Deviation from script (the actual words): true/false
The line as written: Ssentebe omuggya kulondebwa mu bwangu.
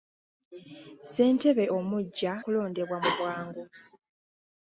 false